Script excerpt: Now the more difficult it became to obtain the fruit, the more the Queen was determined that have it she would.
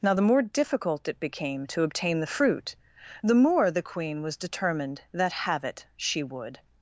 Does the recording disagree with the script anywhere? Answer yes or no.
no